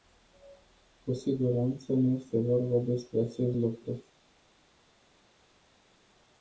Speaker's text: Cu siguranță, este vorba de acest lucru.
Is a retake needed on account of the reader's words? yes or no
yes